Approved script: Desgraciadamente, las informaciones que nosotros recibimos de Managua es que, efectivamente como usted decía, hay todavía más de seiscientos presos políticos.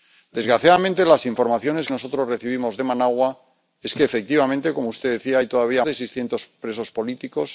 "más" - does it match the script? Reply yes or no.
no